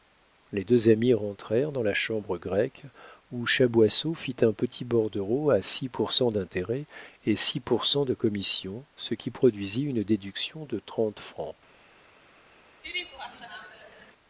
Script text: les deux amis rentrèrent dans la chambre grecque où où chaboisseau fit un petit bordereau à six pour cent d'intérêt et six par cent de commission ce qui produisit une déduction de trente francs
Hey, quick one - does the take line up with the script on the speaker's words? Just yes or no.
no